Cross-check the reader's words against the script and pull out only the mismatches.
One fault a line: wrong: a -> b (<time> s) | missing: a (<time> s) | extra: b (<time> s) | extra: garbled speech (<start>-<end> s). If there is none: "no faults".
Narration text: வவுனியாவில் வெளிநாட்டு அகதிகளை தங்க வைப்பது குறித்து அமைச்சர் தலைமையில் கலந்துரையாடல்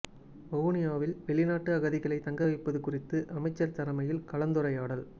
no faults